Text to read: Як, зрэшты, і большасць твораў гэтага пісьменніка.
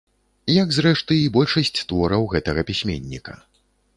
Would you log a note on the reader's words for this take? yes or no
no